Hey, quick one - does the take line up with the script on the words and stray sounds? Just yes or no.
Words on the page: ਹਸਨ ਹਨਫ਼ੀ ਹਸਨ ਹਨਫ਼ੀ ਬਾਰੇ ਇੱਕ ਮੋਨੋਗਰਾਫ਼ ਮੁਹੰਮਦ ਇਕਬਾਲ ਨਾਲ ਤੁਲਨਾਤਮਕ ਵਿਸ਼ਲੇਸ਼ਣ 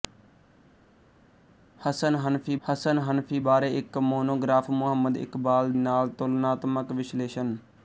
yes